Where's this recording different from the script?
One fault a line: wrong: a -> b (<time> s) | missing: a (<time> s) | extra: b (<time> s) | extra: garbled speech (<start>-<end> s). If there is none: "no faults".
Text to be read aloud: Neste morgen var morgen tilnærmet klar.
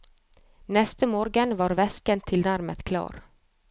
wrong: morgen -> væsken (1.8 s)